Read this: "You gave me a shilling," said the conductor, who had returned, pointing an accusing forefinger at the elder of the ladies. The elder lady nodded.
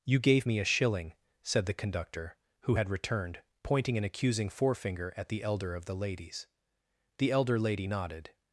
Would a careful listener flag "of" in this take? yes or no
no